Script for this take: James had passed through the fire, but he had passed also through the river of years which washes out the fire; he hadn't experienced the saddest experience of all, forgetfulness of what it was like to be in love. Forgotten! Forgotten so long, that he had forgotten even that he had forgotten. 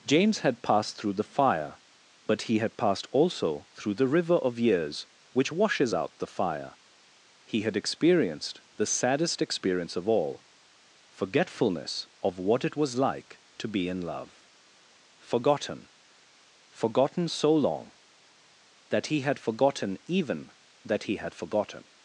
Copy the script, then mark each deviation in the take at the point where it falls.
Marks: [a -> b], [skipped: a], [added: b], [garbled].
James had passed through the fire, but he had passed also through the river of years which washes out the fire; he [hadn't -> had] experienced the saddest experience of all, forgetfulness of what it was like to be in love. Forgotten! Forgotten so long, that he had forgotten even that he had forgotten.